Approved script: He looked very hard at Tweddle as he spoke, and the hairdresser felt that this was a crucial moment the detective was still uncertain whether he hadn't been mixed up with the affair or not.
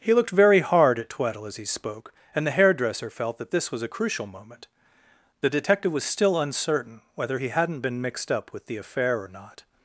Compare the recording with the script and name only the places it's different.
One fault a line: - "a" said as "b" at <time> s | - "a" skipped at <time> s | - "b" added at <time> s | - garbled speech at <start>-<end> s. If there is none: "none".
none